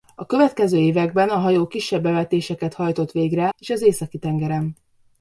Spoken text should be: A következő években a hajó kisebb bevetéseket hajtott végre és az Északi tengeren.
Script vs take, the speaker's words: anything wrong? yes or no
no